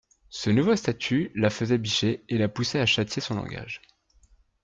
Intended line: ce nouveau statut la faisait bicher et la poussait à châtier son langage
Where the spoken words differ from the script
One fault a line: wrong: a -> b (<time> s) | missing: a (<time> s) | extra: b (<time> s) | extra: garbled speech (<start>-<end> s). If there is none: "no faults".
no faults